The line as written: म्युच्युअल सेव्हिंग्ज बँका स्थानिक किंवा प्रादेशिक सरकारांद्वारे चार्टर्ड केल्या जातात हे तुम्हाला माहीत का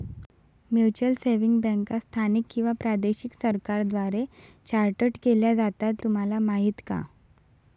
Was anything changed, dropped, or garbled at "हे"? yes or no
yes